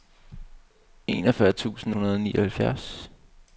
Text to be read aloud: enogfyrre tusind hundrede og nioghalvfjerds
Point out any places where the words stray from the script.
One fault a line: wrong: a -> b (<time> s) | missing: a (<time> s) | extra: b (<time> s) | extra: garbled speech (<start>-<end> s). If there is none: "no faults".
no faults